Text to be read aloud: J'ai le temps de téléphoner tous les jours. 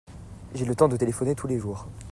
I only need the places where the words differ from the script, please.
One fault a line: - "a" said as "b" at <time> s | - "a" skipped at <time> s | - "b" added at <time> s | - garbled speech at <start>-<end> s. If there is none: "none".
none